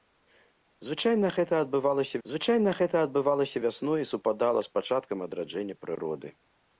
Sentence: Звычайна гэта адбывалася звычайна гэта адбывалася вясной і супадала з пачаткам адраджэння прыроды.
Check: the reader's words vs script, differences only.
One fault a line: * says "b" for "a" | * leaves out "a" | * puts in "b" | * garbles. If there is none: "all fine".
all fine